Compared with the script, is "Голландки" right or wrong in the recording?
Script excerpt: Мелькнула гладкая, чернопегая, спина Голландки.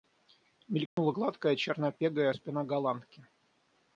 right